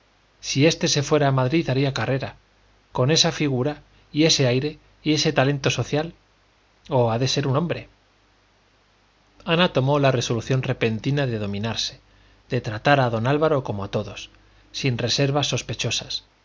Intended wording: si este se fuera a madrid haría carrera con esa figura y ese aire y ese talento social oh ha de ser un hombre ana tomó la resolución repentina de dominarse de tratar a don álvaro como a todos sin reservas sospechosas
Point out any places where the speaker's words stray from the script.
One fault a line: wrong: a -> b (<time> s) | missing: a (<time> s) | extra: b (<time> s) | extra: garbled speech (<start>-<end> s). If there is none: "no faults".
no faults